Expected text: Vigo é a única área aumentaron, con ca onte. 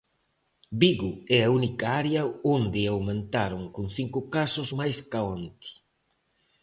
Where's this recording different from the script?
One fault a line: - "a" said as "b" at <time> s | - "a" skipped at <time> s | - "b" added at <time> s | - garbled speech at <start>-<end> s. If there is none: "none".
- "onde" added at 2.5 s
- "cinco casos máis" added at 4.0 s